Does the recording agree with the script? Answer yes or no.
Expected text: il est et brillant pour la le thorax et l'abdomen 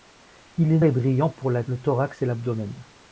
yes